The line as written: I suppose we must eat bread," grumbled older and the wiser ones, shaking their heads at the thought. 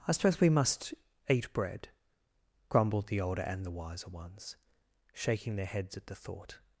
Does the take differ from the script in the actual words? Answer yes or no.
yes